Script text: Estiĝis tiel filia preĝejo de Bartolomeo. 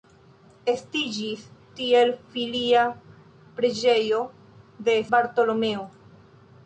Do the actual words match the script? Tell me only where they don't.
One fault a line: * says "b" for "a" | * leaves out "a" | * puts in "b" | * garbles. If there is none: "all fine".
all fine